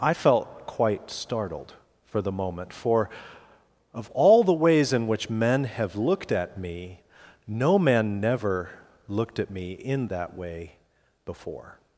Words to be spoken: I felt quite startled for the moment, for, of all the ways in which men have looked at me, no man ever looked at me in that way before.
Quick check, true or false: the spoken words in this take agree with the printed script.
false